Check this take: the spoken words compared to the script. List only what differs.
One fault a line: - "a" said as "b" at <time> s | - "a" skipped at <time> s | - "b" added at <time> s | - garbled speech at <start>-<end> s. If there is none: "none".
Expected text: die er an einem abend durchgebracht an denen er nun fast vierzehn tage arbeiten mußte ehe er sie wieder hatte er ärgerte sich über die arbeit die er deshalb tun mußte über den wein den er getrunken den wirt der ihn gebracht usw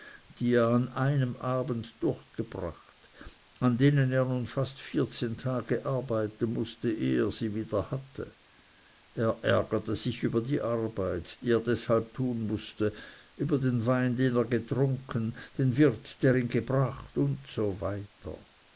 none